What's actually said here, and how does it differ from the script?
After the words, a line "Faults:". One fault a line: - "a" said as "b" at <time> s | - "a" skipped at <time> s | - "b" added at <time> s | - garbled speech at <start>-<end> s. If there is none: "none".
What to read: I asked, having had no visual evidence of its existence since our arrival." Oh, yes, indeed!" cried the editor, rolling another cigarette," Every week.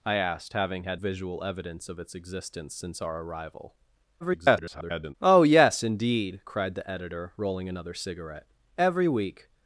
I asked, having had visual evidence of its existence since our arrival." [garbled] Oh, yes, indeed!" cried the editor, rolling another cigarette," Every week.
Faults:
- "no" skipped at 1.0 s
- garbled speech at 4.2-5.1 s